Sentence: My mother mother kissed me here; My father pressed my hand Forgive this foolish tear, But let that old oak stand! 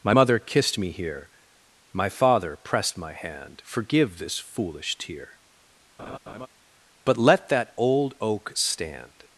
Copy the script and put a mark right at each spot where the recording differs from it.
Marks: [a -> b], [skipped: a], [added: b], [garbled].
My mother [skipped: mother] kissed me here; My father pressed my hand Forgive this foolish tear, But let that old oak stand!